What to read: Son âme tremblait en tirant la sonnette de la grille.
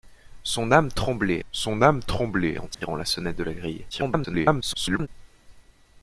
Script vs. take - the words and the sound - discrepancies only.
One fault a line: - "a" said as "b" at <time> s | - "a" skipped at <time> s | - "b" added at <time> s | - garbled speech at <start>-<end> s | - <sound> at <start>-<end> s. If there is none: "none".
- "son âme tremblait" added at 1.5 s
- dropout at 2.7-2.8 s
- garbled speech at 3.9-5.1 s